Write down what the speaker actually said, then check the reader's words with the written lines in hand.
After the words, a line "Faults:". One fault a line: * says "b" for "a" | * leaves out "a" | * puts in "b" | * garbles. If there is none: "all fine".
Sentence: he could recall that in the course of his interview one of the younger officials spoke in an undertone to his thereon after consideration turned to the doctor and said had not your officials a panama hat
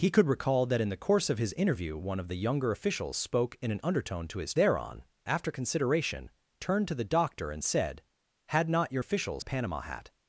he could recall that in the course of his interview one of the younger officials spoke in an undertone to his thereon after consideration turned to the doctor and said had not your officials a panama hat
Faults:
all fine